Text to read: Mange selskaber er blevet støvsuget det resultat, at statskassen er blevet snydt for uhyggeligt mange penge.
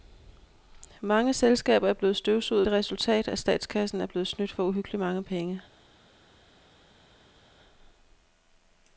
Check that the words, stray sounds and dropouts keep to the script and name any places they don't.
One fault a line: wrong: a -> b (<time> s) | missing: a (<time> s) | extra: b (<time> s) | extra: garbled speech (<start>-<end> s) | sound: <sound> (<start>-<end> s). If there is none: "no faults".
no faults